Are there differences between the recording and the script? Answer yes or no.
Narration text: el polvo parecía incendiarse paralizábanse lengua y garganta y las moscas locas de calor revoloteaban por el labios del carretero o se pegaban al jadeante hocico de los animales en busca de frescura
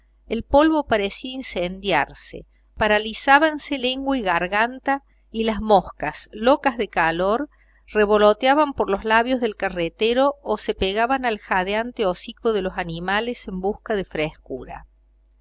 yes